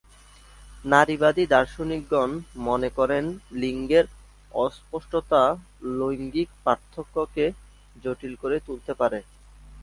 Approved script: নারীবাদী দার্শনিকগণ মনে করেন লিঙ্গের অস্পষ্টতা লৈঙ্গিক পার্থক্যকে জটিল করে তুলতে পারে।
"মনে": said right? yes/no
yes